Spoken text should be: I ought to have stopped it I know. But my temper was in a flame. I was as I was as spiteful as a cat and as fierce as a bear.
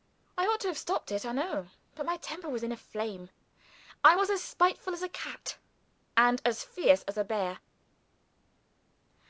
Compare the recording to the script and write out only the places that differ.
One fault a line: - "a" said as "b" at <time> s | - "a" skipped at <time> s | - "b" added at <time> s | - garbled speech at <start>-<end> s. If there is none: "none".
- "I was as" skipped at 4.4 s